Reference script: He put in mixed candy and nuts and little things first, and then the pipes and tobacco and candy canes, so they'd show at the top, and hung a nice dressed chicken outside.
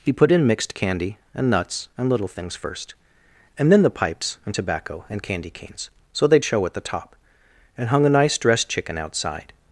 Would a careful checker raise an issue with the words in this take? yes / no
no